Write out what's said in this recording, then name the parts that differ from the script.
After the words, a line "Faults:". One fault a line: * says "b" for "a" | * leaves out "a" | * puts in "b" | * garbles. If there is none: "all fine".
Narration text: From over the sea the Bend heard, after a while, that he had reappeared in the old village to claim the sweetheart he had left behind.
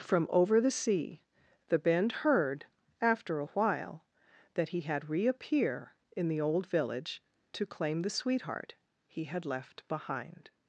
From over the sea the Bend heard, after a while, that he had reappear in the old village to claim the sweetheart he had left behind.
Faults:
* says "reappear" for "reappeared"